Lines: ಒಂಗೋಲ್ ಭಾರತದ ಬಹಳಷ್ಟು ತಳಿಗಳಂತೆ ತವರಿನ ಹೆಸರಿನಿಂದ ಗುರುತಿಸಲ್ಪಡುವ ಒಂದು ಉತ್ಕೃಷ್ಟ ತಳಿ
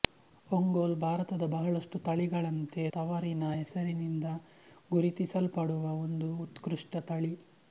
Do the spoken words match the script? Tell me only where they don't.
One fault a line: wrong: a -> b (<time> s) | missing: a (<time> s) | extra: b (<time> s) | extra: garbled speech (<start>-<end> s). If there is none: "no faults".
no faults